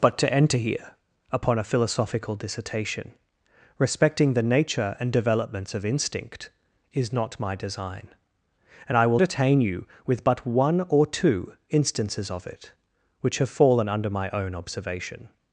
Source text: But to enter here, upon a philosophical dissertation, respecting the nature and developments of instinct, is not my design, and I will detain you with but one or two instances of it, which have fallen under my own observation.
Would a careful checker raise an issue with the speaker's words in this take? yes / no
no